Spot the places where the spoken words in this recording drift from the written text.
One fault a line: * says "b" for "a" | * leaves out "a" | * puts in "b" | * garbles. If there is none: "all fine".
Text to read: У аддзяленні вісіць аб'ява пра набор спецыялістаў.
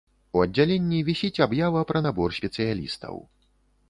all fine